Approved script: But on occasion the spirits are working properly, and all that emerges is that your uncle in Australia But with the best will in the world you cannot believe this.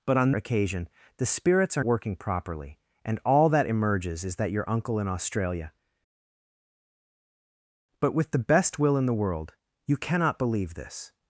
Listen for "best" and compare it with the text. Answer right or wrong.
right